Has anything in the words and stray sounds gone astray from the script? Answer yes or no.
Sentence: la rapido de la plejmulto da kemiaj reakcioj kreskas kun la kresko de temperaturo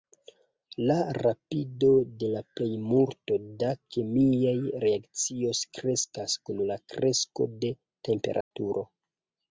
yes